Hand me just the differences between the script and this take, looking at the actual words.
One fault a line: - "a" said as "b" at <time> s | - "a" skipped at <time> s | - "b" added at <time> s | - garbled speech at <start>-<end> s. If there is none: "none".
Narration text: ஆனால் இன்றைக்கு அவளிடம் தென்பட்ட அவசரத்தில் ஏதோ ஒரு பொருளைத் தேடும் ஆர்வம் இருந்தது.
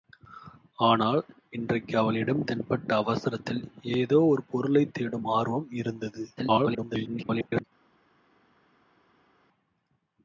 - garbled speech at 6.4-7.6 s